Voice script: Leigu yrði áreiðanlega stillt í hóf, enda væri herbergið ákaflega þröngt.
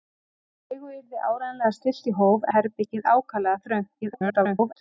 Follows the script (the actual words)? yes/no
no